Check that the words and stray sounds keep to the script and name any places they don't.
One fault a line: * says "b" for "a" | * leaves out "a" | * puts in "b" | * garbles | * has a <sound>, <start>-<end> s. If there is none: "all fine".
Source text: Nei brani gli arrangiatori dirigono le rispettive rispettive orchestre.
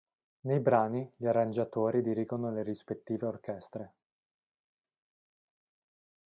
* leaves out "rispettive"